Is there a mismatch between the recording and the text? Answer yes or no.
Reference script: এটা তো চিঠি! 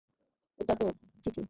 no